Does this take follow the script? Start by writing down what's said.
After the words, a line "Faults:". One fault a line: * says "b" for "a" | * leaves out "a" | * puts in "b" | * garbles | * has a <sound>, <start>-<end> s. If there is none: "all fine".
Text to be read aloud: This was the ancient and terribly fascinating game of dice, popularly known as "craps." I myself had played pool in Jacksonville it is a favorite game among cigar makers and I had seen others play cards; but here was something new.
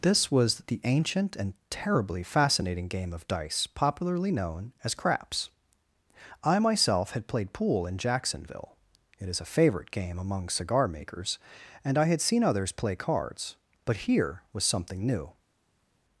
This was the ancient and terribly fascinating game of dice, popularly known as "craps." I myself had played pool in Jacksonville it is a favorite game among cigar makers and I had seen others play cards; but here was something new.
Faults:
all fine